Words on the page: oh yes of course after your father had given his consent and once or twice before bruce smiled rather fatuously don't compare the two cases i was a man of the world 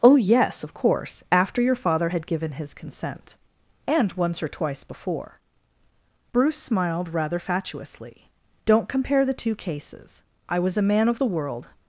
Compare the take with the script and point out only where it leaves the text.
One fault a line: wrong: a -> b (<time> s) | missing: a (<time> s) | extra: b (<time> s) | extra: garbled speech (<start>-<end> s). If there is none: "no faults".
no faults